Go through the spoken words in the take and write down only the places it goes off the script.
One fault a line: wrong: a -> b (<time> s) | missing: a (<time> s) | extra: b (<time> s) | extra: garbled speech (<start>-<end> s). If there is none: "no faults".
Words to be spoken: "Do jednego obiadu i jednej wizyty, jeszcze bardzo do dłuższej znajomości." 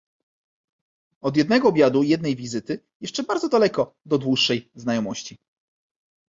wrong: Do -> Od (1.2 s)
extra: daleko (3.5 s)